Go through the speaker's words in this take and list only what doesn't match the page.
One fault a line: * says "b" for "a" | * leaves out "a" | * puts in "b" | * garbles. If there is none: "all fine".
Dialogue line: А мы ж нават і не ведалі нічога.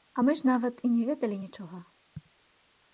all fine